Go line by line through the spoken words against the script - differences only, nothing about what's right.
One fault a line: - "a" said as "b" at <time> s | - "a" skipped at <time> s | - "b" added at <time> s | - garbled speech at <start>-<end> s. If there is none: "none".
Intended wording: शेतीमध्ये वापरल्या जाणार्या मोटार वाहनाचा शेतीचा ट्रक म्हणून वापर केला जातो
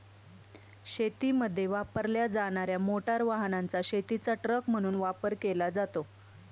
none